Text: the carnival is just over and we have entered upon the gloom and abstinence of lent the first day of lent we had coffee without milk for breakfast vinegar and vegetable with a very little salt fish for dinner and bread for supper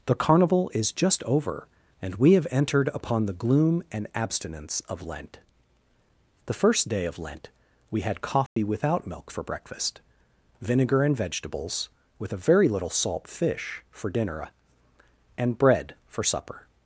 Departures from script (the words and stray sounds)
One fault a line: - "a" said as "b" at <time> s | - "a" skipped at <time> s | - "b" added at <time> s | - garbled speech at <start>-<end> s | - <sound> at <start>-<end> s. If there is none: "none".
- dropout at 8.5-8.6 s
- "vegetable" said as "vegetables" at 11.2 s